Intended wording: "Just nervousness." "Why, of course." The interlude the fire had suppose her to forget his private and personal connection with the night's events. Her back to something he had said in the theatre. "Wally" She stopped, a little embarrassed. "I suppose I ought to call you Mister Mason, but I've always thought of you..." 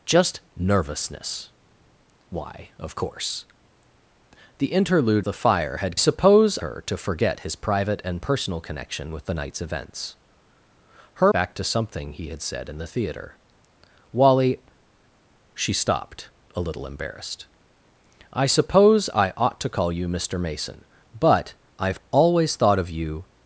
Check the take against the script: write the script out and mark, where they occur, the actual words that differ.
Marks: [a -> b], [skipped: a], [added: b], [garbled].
"Just nervousness." "Why, of course." The interlude the fire had suppose her to forget his private and personal connection with the night's events. Her back to something he had said in the theatre. "Wally" She stopped, a little embarrassed. "I suppose I ought to call you Mister Mason, but I've always thought of you..."